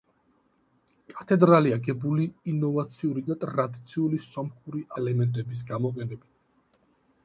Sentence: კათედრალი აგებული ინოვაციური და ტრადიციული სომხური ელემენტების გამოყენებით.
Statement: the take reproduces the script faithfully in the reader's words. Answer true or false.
true